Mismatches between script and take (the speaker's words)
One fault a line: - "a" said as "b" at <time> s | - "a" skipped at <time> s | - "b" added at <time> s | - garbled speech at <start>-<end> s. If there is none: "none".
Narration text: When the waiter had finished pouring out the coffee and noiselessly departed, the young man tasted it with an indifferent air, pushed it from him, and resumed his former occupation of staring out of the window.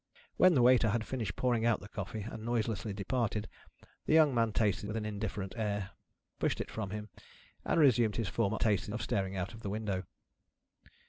- "it" skipped at 4.9 s
- "occupation" said as "tasted" at 8.6 s